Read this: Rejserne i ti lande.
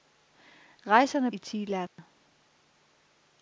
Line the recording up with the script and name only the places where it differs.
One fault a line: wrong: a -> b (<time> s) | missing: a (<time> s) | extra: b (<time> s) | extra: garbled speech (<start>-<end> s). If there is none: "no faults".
no faults